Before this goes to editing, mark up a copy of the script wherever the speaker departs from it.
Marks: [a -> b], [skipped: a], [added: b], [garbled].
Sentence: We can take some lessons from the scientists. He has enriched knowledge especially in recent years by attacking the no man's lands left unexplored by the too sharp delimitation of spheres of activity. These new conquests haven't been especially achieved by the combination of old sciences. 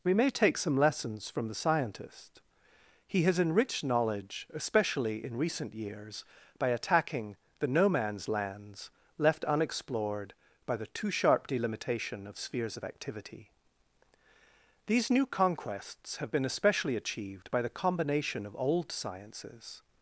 We [can -> may] take some lessons from the [scientists. -> scientist] He has enriched knowledge especially in recent years by attacking the no man's lands left unexplored by the too sharp delimitation of spheres of activity. These new conquests [haven't -> have] been especially achieved by the combination of old sciences.